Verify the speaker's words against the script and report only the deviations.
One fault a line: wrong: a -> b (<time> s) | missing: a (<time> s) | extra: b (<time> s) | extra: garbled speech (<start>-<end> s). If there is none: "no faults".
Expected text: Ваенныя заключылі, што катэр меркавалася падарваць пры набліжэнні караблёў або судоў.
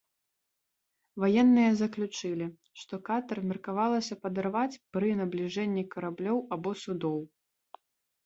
no faults